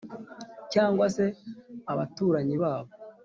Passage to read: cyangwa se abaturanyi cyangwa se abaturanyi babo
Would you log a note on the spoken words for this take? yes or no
yes